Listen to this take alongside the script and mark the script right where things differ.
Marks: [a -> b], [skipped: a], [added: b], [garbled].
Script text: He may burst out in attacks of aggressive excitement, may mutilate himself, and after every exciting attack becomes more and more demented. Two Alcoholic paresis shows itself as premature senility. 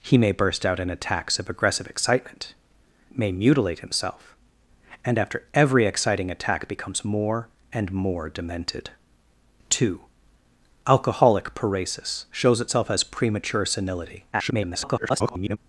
He may burst out in attacks of aggressive excitement, may mutilate himself, and after every exciting attack becomes more and more demented. Two Alcoholic paresis shows itself as premature senility. [garbled]